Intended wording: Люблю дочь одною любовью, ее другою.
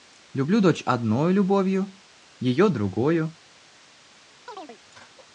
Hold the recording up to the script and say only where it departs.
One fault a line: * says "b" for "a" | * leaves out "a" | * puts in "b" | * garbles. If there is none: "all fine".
all fine